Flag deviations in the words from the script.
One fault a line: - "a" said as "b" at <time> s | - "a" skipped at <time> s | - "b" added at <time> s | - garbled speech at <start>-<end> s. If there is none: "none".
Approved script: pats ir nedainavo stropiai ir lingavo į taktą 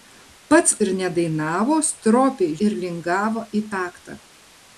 none